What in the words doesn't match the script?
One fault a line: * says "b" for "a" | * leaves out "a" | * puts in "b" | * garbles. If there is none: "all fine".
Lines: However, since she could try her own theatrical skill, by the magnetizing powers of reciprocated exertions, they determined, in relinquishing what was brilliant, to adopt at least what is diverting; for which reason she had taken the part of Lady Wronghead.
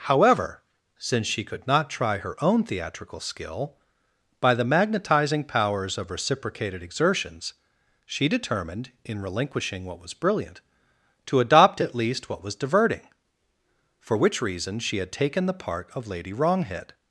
* puts in "not"
* says "she" for "they"
* says "was" for "is"